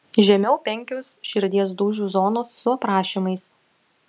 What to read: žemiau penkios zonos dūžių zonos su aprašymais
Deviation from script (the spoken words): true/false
true